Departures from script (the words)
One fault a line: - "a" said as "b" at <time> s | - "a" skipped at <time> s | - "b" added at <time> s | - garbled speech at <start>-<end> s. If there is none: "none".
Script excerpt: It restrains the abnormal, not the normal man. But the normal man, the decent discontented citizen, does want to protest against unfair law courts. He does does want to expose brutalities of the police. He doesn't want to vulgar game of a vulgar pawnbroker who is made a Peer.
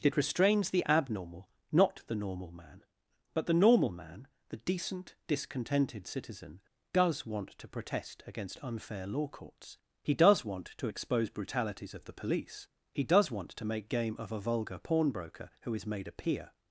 - "does" skipped at 10.5 s
- "doesn't" said as "does" at 13.0 s
- "vulgar" said as "make" at 13.6 s